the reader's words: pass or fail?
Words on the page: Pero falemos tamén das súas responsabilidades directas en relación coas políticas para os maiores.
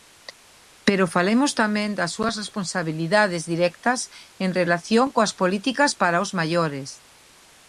pass